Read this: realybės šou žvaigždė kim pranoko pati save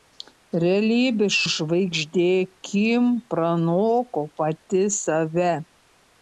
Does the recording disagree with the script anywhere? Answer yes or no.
yes